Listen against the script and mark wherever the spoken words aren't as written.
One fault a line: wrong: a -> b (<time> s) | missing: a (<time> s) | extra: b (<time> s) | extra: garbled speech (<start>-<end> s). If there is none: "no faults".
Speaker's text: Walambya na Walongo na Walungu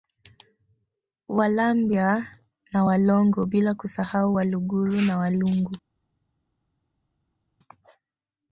extra: bila kusahau Waluguru (3.4 s)